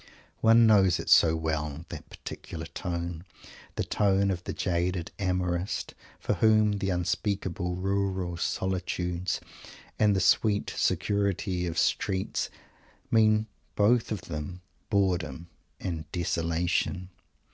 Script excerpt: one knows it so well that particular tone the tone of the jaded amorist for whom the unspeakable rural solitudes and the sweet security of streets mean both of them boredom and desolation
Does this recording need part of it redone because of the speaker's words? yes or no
no